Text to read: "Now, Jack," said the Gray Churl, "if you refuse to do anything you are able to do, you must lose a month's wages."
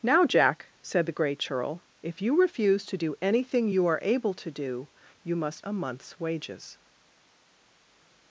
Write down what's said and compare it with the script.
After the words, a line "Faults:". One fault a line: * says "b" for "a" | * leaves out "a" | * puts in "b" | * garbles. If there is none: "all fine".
"Now, Jack," said the Gray Churl, "if you refuse to do anything you are able to do, you must a month's wages."
Faults:
* leaves out "lose"